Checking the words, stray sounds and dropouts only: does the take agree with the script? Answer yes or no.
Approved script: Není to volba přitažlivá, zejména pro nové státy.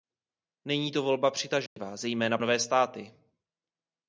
no